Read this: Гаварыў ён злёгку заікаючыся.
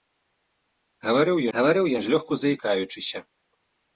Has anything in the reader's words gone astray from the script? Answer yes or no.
yes